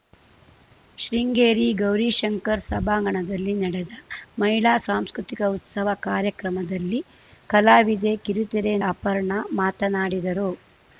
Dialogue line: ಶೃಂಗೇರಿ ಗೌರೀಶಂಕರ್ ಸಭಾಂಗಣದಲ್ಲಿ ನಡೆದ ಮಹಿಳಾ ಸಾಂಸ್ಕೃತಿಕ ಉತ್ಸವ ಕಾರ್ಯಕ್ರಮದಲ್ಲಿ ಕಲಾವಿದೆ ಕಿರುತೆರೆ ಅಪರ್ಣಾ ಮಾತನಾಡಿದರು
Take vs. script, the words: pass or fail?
pass